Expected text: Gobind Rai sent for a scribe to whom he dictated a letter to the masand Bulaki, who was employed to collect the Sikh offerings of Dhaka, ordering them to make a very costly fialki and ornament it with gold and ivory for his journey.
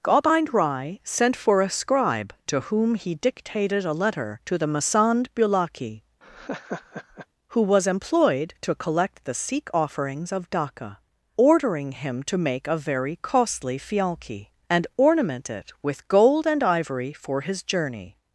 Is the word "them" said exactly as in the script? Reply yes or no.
no